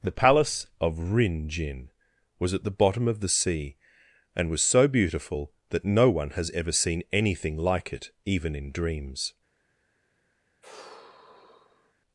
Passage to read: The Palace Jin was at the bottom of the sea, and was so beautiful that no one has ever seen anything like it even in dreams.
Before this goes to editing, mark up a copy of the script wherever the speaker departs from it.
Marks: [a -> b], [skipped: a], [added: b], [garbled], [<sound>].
The Palace [added: of Rin] Jin was at the bottom of the sea, and was so beautiful that no one has ever seen anything like it even in dreams. [sigh]